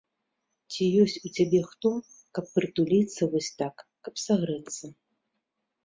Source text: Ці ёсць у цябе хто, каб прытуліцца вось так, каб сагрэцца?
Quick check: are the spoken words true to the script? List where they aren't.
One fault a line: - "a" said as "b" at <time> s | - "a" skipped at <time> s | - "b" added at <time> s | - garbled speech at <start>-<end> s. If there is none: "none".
none